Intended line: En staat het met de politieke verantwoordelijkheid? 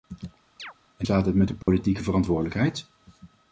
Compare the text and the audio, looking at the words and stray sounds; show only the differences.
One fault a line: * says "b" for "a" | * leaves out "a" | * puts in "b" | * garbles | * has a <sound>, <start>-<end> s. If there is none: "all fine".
* has a chirp, 0.6-0.7 s
* has a dropout, 1.6-1.7 s